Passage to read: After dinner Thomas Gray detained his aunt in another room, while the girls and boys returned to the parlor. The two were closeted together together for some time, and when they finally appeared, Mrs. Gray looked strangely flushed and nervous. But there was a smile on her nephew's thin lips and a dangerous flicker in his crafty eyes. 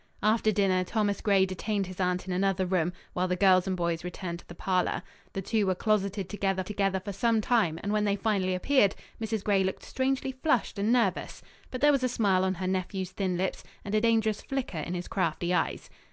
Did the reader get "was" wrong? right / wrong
right